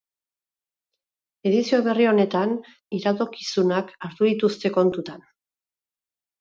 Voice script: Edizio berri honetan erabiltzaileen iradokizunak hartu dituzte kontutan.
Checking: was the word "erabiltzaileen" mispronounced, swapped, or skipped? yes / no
yes